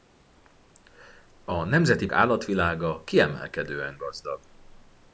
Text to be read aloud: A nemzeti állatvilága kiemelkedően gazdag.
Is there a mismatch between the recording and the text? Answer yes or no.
no